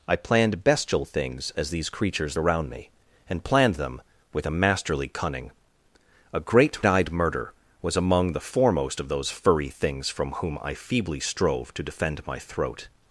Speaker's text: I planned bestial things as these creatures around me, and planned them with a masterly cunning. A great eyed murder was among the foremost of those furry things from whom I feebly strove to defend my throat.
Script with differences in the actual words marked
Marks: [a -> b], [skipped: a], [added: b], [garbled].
I planned bestial things as these creatures around me, and planned them with a masterly cunning. A great eyed murder was among the foremost of those furry things from whom I feebly strove to defend my throat.